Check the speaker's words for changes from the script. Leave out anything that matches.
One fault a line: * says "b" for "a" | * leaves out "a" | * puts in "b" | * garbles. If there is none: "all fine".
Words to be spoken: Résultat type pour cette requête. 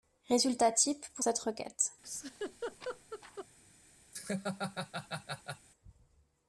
all fine